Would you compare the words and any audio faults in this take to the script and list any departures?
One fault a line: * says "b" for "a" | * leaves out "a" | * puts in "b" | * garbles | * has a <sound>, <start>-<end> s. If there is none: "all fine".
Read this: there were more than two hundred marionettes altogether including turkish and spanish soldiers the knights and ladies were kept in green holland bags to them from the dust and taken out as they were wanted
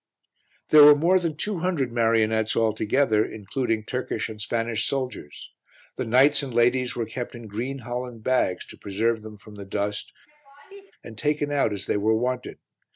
* puts in "preserve"
* has a laugh, 10.3-10.9 s